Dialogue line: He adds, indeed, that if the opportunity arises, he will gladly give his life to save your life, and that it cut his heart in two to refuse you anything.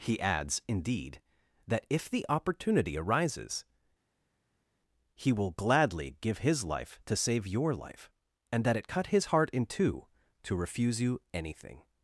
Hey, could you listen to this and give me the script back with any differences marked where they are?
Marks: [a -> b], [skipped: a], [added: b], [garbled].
He adds, indeed, that if the opportunity arises, he will gladly give his life to save your life, and that it cut his heart in two to refuse you anything.